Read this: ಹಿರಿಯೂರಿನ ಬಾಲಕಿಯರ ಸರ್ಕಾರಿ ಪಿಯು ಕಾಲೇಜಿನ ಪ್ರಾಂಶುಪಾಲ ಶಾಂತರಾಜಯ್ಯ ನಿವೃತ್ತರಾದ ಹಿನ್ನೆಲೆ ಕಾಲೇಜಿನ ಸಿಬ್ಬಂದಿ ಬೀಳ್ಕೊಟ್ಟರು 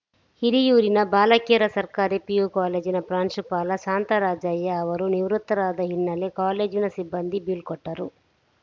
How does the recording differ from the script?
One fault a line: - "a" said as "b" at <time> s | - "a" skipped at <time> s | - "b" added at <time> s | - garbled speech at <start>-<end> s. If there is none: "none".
- "ಅವರು" added at 4.8 s